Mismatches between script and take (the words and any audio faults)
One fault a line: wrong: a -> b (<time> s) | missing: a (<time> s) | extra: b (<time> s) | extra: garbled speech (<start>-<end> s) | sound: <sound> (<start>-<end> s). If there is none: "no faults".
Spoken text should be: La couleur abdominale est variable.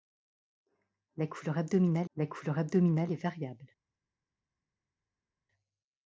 extra: la couleur abdominale (2.1 s)